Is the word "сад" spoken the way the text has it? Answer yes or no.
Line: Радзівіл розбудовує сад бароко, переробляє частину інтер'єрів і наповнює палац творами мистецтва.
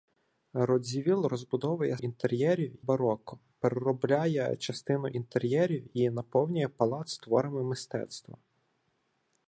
no